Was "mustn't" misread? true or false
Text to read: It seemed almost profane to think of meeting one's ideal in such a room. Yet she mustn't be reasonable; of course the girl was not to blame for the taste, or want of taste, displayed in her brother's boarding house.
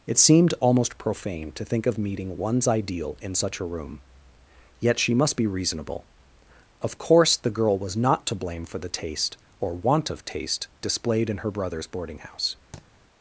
true